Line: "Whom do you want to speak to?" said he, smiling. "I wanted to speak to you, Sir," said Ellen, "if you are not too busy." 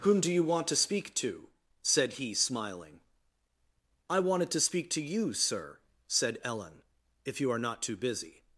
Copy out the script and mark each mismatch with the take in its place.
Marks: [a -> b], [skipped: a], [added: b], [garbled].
"Whom do you want to speak to?" said he, smiling. "I wanted to speak to you, Sir," said Ellen, "if you are not too busy."